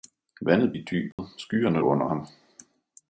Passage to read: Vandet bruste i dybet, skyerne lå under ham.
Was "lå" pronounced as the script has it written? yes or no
no